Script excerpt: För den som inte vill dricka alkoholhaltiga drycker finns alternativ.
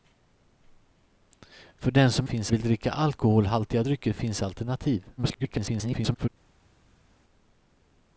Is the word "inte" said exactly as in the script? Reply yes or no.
no